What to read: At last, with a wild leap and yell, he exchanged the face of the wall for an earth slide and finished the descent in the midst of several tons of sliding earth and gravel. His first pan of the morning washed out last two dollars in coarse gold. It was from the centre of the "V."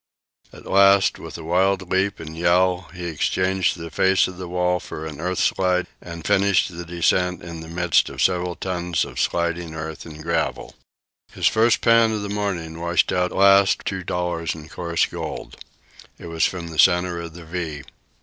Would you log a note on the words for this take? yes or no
no